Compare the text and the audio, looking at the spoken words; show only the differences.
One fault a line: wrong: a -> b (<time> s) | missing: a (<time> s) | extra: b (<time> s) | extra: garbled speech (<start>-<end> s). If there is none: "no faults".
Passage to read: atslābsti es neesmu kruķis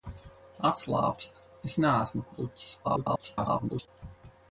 extra: garbled speech (2.8-3.9 s)